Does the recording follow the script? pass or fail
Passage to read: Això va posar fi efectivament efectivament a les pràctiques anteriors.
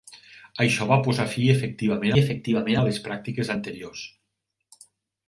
pass